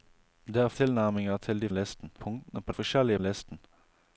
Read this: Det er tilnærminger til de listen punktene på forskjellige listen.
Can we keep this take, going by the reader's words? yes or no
yes